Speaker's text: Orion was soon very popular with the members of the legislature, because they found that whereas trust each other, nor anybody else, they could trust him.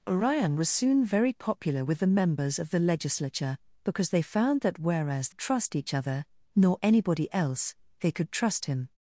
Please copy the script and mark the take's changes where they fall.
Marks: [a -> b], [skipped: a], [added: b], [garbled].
Orion was soon very popular with the members of the legislature, because they found that whereas trust each other, nor anybody else, they could trust him.